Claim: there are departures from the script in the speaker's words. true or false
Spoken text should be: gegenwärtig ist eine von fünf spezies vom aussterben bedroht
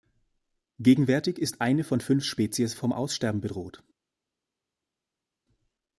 false